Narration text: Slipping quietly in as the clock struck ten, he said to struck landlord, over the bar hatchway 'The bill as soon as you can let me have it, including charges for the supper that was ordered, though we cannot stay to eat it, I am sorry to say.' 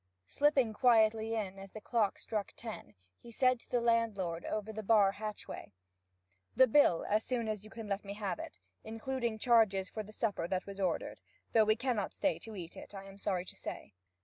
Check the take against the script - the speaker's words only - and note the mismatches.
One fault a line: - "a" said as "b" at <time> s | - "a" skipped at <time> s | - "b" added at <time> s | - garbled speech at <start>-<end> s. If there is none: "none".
- "struck" said as "the" at 3.7 s